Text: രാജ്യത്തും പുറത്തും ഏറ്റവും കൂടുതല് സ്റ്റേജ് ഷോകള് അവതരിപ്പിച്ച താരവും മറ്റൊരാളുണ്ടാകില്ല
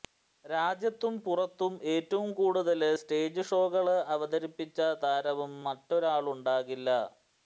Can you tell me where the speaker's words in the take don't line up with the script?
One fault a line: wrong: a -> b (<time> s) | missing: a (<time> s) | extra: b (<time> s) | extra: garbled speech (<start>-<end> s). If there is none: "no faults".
no faults